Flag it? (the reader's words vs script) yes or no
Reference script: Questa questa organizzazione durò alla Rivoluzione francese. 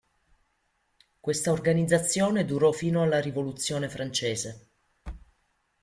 yes